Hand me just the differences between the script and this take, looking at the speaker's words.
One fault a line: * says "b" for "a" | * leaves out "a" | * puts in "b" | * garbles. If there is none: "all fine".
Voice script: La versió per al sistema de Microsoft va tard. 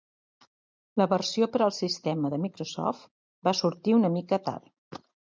* puts in "sortir una mica"